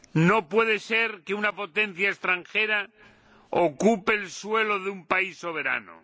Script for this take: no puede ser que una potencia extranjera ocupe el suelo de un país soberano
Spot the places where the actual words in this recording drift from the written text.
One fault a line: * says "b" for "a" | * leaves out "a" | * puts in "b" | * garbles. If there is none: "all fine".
all fine